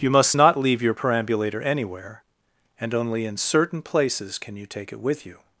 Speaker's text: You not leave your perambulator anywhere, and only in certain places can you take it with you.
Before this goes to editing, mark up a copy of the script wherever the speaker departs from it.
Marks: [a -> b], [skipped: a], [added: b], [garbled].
You [added: must] not leave your perambulator anywhere, and only in certain places can you take it with you.